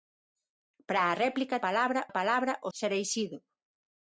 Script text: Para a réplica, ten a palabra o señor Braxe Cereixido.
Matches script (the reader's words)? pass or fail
fail